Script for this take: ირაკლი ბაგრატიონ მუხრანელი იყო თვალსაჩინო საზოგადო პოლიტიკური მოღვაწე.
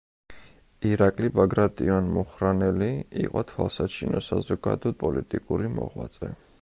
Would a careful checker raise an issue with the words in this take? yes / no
no